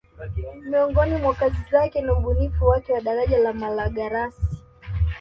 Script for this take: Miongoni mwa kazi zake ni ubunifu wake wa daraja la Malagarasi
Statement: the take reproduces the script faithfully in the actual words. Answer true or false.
true